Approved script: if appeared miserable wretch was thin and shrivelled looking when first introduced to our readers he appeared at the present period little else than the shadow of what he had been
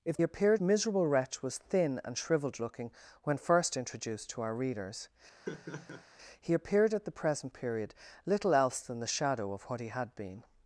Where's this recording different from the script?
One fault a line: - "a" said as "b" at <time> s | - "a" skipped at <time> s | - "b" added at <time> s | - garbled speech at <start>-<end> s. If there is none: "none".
none